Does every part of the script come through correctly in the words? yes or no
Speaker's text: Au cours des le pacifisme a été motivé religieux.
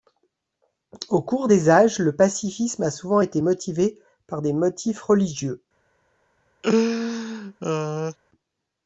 no